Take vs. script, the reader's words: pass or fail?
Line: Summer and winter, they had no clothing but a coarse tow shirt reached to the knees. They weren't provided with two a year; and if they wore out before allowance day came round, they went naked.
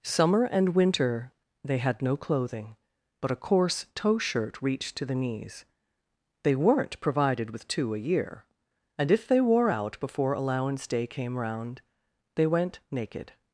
pass